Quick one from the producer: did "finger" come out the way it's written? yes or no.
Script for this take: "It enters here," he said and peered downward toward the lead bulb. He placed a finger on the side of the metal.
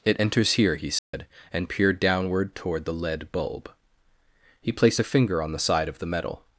yes